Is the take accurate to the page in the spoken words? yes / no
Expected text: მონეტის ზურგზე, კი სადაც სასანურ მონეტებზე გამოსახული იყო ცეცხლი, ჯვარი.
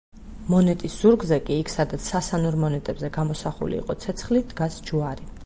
no